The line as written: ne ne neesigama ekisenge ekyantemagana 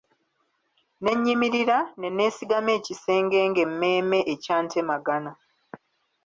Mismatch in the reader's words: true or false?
true